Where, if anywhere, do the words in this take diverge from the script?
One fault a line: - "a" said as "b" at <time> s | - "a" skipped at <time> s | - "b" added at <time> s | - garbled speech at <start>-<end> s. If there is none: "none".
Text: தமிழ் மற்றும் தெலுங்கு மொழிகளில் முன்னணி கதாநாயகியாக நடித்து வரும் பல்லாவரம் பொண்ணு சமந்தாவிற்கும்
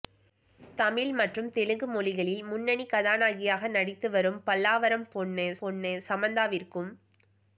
- "பொண்ணு" added at 5.6 s